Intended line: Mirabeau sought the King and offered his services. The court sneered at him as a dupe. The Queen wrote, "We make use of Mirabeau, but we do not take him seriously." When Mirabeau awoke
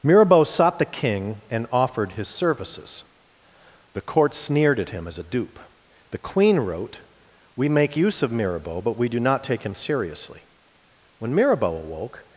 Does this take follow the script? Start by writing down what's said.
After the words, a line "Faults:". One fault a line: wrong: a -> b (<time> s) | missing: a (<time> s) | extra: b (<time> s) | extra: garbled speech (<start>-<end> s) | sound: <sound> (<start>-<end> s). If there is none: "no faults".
Mirabeau sought the King and offered his services. The court sneered at him as a dupe. The Queen wrote, "We make use of Mirabeau, but we do not take him seriously." When Mirabeau awoke
Faults:
no faults